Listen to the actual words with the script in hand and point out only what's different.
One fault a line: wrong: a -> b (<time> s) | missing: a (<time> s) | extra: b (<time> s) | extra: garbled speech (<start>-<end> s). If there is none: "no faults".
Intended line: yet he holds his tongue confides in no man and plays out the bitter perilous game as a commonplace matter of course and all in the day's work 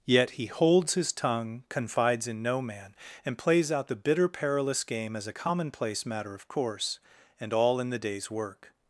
no faults